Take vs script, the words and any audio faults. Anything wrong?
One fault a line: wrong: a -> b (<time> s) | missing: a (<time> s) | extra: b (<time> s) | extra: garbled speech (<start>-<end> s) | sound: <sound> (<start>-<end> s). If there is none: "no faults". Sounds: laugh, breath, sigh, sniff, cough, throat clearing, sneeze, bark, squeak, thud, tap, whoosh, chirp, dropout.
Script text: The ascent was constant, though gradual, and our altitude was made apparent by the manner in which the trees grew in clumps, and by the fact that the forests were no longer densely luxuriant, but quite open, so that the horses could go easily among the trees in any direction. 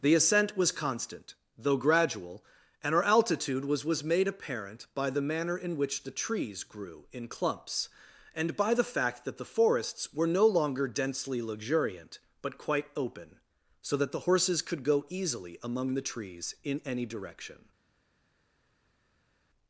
extra: was (3.9 s)